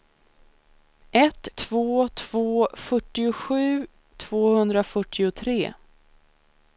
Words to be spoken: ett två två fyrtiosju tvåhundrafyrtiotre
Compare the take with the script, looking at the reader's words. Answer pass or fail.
pass